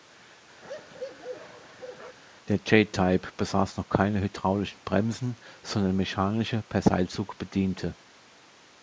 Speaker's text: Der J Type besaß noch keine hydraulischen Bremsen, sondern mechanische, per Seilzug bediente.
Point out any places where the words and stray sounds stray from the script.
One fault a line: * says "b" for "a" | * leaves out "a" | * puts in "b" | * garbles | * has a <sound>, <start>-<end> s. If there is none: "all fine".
* has a bark, 0.6-2.2 s